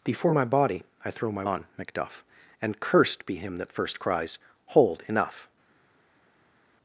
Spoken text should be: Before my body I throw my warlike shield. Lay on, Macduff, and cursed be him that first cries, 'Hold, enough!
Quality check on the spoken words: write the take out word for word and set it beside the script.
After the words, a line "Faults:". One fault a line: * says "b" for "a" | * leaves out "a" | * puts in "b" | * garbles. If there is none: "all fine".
Before my body I throw my on, Macduff, and cursed be him that first cries, 'Hold, enough!
Faults:
* leaves out "warlike shield Lay"